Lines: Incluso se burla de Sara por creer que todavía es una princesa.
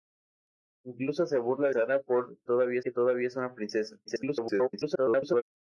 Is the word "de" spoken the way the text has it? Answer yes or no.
no